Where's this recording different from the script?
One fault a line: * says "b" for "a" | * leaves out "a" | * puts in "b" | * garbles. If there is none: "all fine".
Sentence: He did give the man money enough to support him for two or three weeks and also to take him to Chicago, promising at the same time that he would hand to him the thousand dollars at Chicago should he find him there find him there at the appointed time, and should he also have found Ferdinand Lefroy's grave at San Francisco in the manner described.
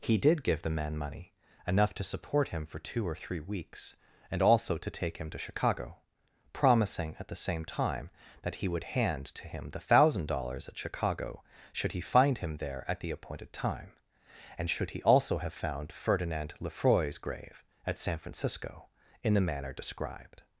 * leaves out "find him there"